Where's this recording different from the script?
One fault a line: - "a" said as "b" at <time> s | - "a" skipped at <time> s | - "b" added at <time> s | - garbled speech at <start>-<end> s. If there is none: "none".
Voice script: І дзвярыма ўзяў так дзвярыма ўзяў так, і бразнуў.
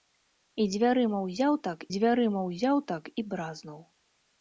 none